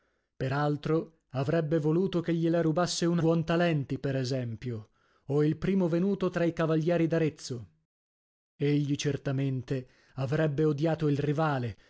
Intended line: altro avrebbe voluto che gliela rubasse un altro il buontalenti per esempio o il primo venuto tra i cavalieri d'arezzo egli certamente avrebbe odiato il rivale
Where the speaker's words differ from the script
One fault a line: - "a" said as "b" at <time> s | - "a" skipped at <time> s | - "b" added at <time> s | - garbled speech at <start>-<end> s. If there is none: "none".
- "altro il" skipped at 3.2 s